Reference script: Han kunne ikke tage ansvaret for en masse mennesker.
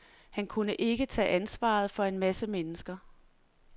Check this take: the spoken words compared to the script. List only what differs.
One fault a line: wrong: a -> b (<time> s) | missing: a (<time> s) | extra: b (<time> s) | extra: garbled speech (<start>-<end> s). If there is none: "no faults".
no faults